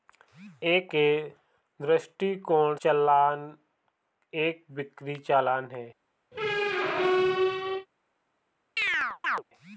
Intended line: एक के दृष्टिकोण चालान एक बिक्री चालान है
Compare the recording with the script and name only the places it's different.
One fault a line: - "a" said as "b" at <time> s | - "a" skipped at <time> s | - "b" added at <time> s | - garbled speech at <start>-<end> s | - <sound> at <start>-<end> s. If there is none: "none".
- squeak at 6.3-7.9 s
- chirp at 8.8-9.4 s